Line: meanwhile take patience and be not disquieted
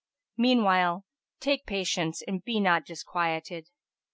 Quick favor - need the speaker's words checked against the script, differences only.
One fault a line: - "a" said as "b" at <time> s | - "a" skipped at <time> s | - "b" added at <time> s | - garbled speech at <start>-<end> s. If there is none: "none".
none